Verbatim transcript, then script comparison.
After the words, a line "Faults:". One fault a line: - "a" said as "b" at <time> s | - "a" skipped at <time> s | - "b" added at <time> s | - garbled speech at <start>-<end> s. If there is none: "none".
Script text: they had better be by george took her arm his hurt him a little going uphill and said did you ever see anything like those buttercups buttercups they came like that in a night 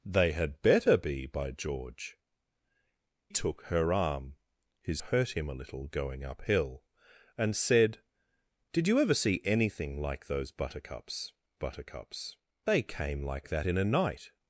they had better be by george took her arm his hurt him a little going uphill and said did you ever see anything like those buttercups buttercups they came like that in a night
Faults:
none